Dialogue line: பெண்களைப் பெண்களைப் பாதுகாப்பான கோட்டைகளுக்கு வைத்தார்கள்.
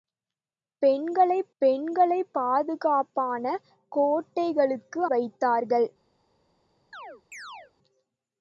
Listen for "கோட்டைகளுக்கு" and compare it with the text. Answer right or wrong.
right